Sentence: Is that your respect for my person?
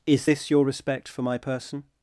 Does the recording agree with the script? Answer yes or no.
no